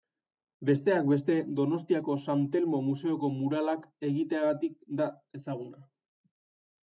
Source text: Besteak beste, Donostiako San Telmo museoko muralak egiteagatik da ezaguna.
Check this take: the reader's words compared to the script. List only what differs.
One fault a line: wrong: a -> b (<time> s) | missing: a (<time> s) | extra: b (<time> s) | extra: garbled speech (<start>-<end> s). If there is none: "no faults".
no faults